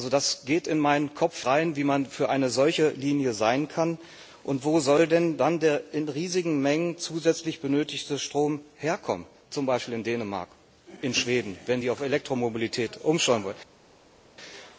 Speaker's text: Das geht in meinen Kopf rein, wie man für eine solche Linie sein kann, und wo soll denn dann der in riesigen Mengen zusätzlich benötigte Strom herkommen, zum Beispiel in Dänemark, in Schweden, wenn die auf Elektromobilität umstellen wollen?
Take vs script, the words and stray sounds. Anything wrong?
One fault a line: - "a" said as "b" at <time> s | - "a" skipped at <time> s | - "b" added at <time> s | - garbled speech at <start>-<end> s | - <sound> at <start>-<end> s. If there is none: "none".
none